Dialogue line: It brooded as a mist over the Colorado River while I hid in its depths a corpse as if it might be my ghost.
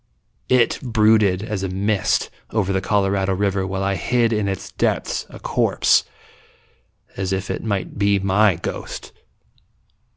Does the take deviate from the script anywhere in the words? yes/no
no